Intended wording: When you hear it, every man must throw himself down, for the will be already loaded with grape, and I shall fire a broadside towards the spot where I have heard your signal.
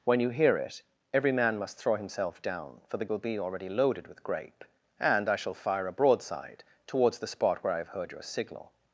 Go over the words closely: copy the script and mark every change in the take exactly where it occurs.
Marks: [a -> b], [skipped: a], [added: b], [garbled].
When you hear it, every man must throw himself down, for the will be already loaded with grape, and I shall fire a broadside towards the spot where I have heard your signal.